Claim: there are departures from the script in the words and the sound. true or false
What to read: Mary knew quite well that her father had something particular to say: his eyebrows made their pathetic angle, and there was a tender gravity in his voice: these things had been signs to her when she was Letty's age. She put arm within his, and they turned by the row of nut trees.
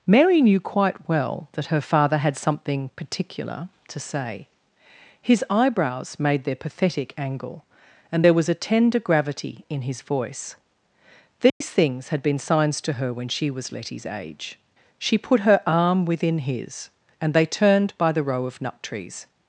true